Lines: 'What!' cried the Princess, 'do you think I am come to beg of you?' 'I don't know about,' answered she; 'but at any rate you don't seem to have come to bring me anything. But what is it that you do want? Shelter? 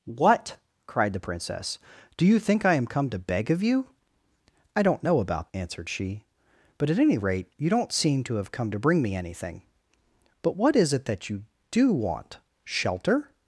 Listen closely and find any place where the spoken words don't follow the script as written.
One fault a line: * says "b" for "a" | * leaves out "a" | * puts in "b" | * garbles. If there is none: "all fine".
all fine